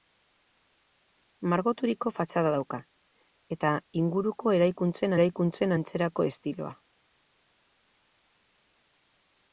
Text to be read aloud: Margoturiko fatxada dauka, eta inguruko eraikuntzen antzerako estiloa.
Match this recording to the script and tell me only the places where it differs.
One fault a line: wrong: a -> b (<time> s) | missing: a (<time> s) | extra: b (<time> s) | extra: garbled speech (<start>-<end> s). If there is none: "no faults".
extra: eraikuntzen (5.2 s)